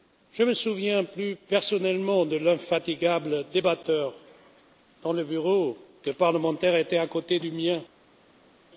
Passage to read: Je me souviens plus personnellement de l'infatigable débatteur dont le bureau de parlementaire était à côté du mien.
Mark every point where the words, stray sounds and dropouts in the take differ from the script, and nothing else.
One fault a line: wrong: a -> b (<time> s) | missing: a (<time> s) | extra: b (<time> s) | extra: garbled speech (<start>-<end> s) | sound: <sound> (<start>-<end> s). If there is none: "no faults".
no faults